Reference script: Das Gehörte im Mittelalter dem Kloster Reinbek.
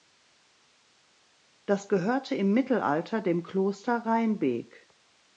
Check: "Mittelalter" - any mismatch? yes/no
no